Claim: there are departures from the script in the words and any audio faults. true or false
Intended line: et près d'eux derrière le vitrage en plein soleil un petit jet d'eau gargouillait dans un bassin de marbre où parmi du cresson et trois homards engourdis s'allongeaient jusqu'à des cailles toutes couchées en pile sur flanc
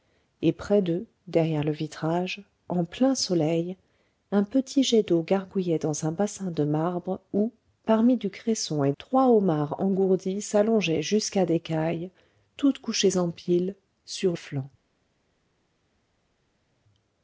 false